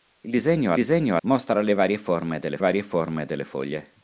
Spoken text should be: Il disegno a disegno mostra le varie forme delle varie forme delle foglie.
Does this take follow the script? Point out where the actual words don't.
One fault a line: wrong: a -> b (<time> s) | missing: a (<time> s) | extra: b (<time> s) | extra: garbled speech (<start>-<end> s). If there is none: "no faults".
no faults